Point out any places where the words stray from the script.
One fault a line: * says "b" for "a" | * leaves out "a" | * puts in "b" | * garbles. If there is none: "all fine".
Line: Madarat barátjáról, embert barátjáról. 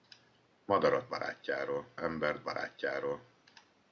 all fine